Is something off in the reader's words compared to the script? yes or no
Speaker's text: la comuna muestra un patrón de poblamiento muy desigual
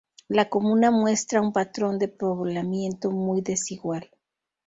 no